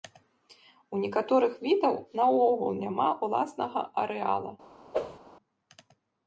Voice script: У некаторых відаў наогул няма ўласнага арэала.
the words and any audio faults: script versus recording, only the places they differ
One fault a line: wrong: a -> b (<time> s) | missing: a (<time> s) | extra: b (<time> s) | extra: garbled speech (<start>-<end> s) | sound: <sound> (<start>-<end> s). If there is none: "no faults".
sound: whoosh (4.9-5.2 s)